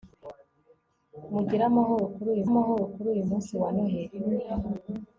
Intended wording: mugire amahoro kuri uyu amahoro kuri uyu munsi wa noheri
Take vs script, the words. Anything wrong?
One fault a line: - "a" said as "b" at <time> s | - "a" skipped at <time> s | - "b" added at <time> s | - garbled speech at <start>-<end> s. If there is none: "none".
none